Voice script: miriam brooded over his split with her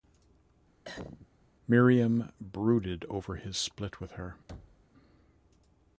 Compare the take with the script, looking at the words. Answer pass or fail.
pass